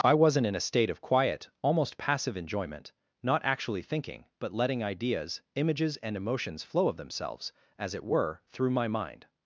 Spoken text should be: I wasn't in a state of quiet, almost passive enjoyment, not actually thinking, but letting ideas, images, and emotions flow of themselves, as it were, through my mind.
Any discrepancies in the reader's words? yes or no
no